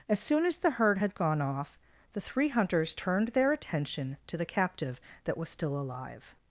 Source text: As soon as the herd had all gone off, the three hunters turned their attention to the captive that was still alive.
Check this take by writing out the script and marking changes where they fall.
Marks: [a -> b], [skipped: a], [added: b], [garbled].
As soon as the herd had [skipped: all] gone off, the three hunters turned their attention to the captive that was still alive.